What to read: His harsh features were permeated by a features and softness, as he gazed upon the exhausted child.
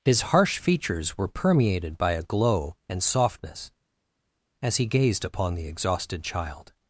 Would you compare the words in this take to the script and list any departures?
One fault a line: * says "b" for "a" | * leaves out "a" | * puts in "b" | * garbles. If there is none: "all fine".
* says "glow" for "features"